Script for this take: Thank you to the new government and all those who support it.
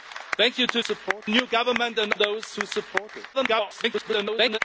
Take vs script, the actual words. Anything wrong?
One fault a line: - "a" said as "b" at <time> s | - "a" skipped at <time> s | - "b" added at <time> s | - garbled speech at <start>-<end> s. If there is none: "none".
- "the" said as "support" at 0.8 s
- "all" skipped at 2.1 s
- garbled speech at 3.3-4.6 s